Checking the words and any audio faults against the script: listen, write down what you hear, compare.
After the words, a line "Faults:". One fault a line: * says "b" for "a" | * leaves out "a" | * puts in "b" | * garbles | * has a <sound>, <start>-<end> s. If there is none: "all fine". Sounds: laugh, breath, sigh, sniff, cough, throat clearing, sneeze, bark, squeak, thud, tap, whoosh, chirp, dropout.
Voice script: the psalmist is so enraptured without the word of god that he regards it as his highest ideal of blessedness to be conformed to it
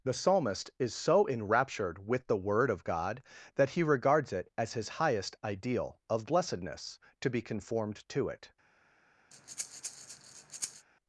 the psalmist is so enraptured with the word of god that he regards it as his highest ideal of blessedness to be conformed to it
Faults:
* says "with" for "without"
* has a breath, 9.3-10.9 s